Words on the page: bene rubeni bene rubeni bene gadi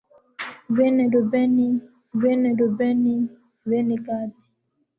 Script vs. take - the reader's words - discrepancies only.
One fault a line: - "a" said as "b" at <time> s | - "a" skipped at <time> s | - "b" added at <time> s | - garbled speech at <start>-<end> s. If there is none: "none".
none